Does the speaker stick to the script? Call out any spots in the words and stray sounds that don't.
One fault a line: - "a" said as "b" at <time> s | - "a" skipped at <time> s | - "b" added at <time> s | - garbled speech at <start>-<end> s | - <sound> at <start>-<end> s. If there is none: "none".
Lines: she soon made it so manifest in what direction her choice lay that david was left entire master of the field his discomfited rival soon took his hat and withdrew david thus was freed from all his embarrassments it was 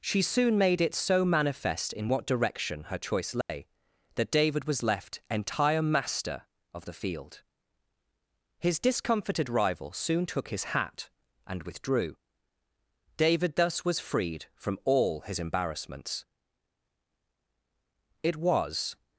- dropout at 3.4-3.5 s